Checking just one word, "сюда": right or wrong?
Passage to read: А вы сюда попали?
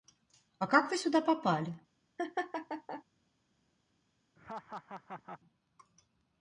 right